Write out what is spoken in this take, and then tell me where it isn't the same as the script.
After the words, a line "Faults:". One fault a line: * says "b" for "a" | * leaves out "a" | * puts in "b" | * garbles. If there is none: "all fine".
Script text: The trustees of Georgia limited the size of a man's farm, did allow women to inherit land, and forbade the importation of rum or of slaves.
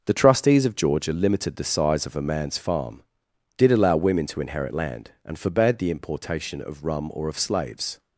The trustees of Georgia limited the size of a man's farm, did allow women to inherit land, and forbade the importation of rum or of slaves.
Faults:
all fine